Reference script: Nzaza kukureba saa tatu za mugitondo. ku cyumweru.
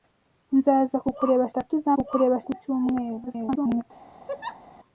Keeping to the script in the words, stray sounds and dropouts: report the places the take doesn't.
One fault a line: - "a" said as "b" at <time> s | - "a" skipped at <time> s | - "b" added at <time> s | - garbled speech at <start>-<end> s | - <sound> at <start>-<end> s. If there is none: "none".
- "saa" skipped at 1.4 s
- "mugitondo" said as "kukureba" at 2.0 s
- garbled speech at 3.3-3.8 s
- laugh at 4.3-4.6 s